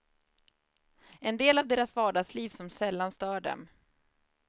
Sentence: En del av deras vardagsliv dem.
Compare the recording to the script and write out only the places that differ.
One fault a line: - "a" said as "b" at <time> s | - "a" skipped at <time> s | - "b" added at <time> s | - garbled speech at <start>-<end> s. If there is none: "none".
- "som sällan stör" added at 2.5 s